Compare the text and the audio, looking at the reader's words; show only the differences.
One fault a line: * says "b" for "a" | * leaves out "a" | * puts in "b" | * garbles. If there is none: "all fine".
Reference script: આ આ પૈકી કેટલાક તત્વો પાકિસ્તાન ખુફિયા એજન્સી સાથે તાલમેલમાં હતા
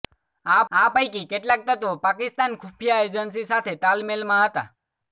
all fine